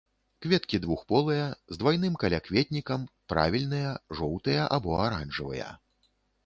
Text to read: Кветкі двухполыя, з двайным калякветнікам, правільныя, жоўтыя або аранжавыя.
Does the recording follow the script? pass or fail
pass